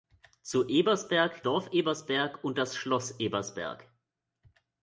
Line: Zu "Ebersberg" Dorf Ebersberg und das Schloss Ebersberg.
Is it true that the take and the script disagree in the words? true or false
false